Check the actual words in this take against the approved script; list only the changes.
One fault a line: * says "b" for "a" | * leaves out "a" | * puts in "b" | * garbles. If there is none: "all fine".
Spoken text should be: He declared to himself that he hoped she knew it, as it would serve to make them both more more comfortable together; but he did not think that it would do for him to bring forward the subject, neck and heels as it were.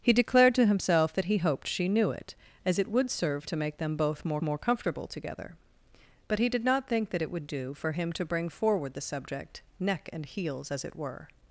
all fine